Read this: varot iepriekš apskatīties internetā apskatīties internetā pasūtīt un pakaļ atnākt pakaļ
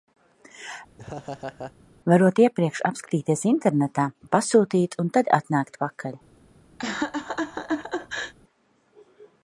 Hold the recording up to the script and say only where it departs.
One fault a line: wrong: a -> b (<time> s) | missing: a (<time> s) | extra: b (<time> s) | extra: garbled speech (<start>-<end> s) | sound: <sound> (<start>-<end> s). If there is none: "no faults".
sound: laugh (1.0-1.7 s)
missing: apskatīties internetā (4.1 s)
wrong: pakaļ -> tad (5.2 s)
sound: laugh (6.8-8.3 s)